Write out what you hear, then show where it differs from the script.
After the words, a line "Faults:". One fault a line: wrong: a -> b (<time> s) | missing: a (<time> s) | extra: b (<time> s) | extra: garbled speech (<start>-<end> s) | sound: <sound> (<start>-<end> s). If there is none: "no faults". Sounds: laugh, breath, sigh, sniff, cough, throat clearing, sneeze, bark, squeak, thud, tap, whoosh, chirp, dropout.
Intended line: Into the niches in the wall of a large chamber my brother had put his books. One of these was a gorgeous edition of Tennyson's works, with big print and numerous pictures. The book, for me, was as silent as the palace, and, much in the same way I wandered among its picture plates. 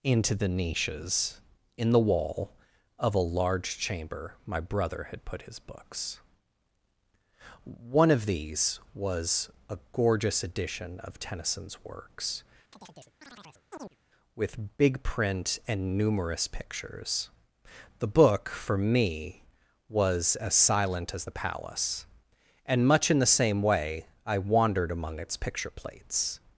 Into the niches in the wall of a large chamber my brother had put his books. One of these was a gorgeous edition of Tennyson's works, with big print and numerous pictures. The book, for me, was as silent as the palace, and, much in the same way I wandered among its picture plates.
Faults:
sound: chirp (12.7-14.0 s)